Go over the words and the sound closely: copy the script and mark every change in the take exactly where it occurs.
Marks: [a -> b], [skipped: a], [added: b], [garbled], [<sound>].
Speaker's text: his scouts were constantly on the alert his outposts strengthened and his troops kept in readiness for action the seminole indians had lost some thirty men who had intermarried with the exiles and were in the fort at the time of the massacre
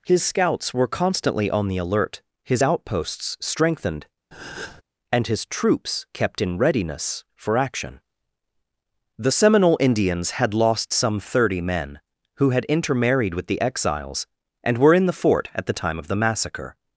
his scouts were constantly on the alert his outposts strengthened [breath] and his troops kept in readiness for action the seminole indians had lost some thirty men who had intermarried with the exiles and were in the fort at the time of the massacre